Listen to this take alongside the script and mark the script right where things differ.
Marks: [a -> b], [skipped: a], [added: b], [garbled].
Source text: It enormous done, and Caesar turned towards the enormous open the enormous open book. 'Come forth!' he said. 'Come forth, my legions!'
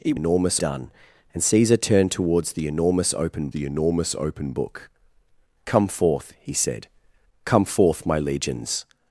It enormous done, and Caesar turned towards the enormous open the enormous open book. 'Come forth!' he said. 'Come forth, my legions!'